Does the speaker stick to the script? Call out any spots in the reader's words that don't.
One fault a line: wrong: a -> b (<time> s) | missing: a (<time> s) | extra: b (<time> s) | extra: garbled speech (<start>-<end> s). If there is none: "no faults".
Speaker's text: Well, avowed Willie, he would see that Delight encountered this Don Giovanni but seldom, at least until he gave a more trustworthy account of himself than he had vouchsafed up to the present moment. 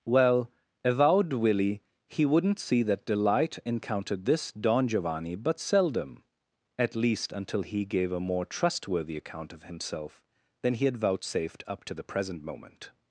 wrong: would -> wouldn't (2.2 s)